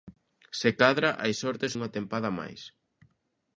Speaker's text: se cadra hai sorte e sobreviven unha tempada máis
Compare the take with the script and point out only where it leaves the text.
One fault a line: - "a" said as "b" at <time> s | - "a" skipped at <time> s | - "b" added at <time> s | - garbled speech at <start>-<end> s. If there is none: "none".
- "sobreviven" skipped at 1.7 s